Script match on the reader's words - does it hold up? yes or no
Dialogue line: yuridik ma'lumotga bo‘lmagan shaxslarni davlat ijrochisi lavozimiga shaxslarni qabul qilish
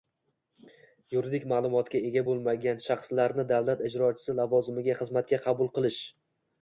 no